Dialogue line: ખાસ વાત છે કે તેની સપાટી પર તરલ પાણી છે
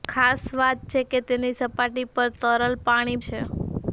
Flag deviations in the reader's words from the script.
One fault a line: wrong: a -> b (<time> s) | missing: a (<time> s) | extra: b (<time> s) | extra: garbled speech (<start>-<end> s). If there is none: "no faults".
no faults